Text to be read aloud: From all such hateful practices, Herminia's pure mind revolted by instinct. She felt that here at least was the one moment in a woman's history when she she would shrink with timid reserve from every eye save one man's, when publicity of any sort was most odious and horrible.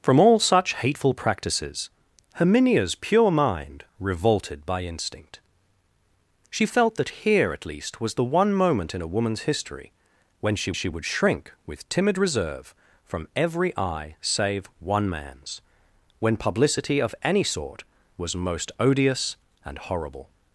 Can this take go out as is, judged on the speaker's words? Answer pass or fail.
pass